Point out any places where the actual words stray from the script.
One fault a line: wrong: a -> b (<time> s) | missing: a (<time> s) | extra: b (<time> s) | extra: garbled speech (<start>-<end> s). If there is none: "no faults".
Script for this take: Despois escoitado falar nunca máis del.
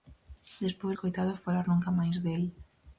no faults